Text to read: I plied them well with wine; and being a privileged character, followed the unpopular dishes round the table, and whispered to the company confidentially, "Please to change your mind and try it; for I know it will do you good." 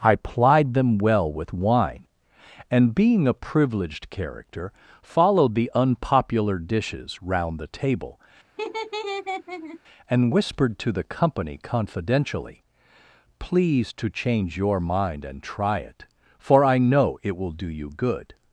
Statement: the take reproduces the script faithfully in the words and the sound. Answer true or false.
false